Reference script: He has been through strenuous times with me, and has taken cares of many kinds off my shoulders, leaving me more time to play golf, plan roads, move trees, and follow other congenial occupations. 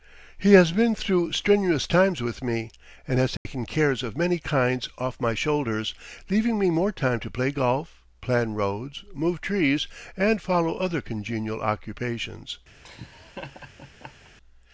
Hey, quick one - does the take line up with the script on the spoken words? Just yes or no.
yes